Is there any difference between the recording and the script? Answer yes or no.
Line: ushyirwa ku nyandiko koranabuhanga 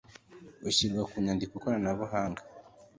no